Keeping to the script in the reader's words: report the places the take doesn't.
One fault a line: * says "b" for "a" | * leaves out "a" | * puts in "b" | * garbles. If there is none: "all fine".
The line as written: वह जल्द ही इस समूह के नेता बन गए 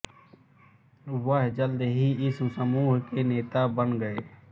all fine